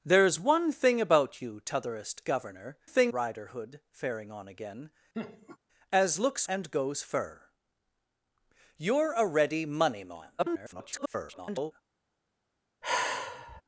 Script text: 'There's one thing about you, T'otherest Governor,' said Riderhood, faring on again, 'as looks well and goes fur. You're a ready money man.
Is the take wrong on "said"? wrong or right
wrong